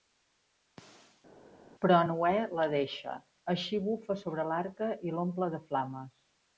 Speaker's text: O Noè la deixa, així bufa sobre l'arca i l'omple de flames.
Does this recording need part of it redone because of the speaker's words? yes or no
yes